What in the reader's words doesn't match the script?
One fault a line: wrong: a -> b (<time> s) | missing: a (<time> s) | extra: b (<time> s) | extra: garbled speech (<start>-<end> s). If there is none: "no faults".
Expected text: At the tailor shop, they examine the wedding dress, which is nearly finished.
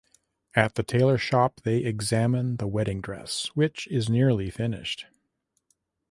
no faults